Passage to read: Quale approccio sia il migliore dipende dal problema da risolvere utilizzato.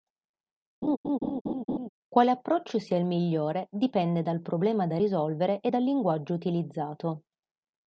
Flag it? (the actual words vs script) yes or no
yes